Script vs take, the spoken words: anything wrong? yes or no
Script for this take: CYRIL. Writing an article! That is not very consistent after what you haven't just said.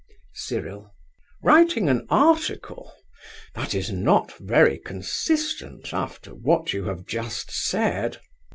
yes